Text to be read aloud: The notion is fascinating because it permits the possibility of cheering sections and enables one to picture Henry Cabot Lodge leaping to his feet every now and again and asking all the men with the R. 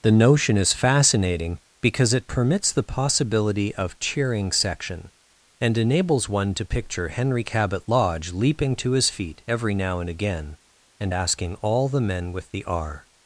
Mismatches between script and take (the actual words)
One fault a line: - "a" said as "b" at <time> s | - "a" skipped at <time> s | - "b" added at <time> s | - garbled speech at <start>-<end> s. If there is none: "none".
- "sections" said as "section" at 4.5 s